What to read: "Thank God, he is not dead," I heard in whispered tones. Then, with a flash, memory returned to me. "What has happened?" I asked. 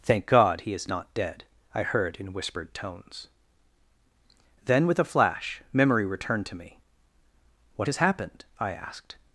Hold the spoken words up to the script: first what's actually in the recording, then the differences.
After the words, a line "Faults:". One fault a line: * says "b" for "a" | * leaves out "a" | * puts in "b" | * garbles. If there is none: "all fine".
"Thank God, he is not dead," I heard in whispered tones. Then, with a flash, memory returned to me. "What has happened?" I asked.
Faults:
all fine